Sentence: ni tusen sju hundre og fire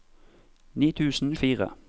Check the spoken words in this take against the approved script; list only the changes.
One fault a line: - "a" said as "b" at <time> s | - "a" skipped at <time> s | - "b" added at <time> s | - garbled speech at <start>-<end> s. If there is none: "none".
- "sju hundre" skipped at 1.4 s